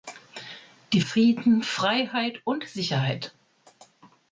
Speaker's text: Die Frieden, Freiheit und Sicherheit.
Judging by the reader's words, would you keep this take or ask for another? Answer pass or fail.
pass